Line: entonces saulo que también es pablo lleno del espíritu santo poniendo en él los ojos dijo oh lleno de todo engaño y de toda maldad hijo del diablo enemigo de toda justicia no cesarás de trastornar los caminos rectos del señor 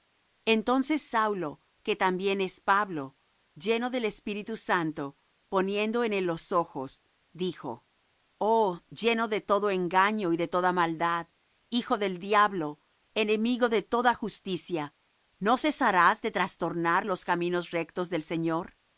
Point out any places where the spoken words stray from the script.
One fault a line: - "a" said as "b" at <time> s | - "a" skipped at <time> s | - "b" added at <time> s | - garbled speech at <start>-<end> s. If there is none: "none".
none